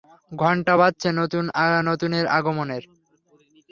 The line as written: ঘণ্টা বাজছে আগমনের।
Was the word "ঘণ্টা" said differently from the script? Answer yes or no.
no